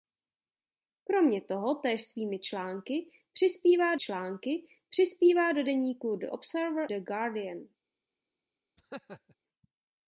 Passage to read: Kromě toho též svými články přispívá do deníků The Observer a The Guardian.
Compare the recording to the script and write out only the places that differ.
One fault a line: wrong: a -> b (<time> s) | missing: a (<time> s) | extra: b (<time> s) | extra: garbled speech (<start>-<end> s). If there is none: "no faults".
extra: články přispívá (4.0 s)
missing: a (6.9 s)